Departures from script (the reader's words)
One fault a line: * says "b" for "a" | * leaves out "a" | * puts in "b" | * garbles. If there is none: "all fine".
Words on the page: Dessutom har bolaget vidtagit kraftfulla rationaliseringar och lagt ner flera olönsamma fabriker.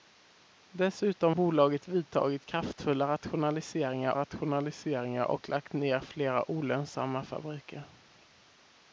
* leaves out "har"
* puts in "rationaliseringar"